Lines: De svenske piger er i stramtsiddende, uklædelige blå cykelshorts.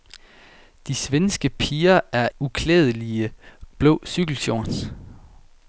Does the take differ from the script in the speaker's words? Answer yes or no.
yes